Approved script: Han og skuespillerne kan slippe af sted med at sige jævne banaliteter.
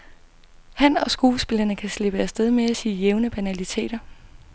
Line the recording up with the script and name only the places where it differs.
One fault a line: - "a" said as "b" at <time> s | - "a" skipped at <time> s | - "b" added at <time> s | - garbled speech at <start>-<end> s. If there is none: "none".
none